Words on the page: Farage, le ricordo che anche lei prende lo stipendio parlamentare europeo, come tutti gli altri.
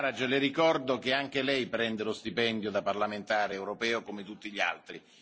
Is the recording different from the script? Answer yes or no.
yes